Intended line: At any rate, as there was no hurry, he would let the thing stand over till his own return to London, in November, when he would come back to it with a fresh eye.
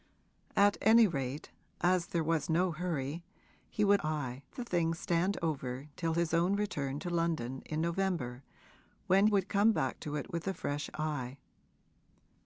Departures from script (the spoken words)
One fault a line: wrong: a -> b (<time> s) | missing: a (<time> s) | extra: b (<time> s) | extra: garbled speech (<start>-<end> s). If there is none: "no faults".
wrong: let -> eye (4.0 s)
missing: he (9.3 s)